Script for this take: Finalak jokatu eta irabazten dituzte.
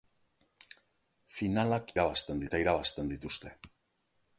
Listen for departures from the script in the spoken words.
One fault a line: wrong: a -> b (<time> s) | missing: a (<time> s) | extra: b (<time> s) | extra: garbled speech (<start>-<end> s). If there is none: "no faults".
wrong: jokatu -> irabazten (2.0 s)